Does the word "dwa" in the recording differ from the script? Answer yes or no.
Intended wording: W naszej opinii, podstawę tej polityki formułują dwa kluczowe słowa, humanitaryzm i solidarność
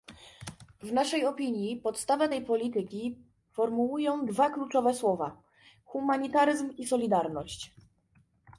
no